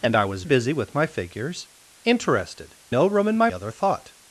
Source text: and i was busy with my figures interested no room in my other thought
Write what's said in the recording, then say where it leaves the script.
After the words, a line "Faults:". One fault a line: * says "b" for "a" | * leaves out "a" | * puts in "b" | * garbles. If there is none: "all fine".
and i was busy with my figures interested no room in my other thought
Faults:
all fine